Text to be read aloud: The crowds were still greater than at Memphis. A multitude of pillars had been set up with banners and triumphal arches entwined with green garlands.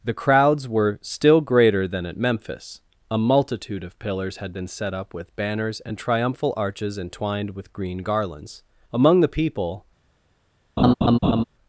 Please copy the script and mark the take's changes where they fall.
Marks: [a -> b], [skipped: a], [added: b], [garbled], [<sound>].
The crowds were still greater than at Memphis. A multitude of pillars had been set up with banners and triumphal arches entwined with green garlands. [added: Among the people] [laugh]